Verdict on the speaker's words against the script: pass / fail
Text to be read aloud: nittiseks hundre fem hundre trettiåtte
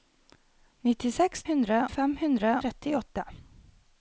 pass